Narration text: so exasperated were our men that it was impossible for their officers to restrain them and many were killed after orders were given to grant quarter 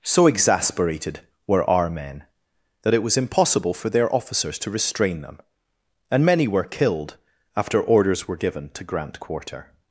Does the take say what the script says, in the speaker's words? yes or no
yes